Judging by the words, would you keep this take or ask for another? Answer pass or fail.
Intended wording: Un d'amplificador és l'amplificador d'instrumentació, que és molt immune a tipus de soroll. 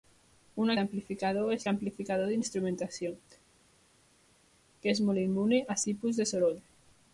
pass